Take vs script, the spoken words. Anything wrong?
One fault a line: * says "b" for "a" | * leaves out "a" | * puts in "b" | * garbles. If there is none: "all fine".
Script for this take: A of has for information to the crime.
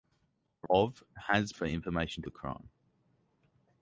all fine